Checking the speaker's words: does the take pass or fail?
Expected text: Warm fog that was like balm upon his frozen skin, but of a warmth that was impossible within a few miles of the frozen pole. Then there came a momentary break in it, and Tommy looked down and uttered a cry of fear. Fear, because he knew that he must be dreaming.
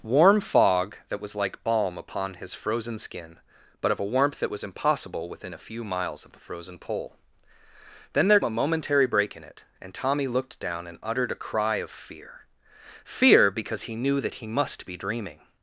fail